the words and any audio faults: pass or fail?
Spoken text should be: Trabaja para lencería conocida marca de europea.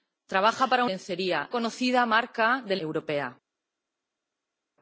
pass